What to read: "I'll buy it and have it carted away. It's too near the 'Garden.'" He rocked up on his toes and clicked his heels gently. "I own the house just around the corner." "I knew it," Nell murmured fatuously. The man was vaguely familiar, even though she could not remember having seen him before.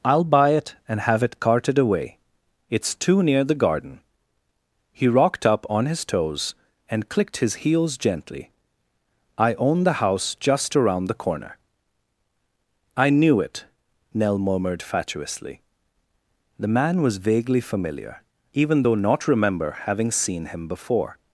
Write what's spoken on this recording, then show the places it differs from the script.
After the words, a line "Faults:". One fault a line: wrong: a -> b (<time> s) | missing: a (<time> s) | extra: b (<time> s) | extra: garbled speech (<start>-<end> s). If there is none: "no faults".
"I'll buy it and have it carted away. It's too near the 'Garden.'" He rocked up on his toes and clicked his heels gently. "I own the house just around the corner." "I knew it," Nell murmured fatuously. The man was vaguely familiar, even though not remember having seen him before.
Faults:
missing: she could (19.0 s)